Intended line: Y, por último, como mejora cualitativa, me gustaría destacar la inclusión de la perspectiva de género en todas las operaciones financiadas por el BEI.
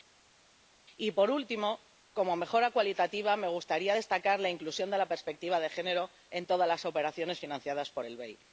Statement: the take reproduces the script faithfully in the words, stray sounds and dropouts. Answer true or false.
true